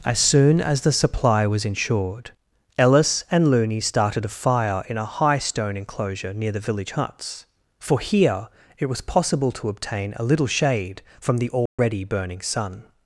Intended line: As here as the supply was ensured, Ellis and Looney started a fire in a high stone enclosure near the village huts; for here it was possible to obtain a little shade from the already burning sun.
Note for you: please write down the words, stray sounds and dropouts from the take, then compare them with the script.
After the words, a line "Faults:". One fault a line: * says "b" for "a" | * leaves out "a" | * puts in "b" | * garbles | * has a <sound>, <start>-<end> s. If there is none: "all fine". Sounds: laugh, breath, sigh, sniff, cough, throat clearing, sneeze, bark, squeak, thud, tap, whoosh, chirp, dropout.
As soon as the supply was ensured, Ellis and Looney started a fire in a high stone enclosure near the village huts; for here it was possible to obtain a little shade from the already burning sun.
Faults:
* says "soon" for "here"
* has a dropout, 11.7-11.8 s